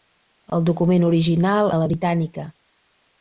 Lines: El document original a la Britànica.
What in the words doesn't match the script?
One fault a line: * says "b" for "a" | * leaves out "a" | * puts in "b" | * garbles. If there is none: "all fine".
all fine